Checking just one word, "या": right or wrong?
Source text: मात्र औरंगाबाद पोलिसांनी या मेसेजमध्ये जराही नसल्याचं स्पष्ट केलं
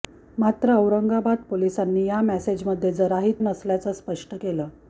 right